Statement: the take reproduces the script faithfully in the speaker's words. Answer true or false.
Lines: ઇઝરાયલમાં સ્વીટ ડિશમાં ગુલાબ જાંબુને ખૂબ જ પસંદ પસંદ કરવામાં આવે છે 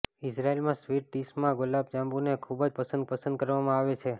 true